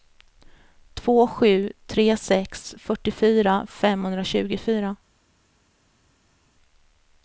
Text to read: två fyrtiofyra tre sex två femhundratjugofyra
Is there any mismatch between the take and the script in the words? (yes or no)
yes